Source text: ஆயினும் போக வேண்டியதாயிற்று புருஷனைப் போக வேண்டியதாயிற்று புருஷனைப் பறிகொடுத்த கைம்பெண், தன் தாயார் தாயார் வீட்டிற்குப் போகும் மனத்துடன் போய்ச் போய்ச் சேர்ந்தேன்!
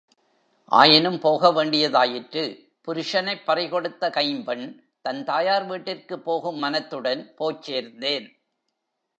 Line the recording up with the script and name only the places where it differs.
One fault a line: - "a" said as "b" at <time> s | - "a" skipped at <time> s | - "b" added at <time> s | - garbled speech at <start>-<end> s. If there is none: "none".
- "போக வேண்டியதாயிற்று புருஷனைப்" skipped at 3.5 s
- "தாயார்" skipped at 5.7 s
- "போய்ச்" skipped at 7.6 s